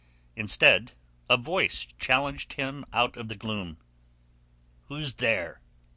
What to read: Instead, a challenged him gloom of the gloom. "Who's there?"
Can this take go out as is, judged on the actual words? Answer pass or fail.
fail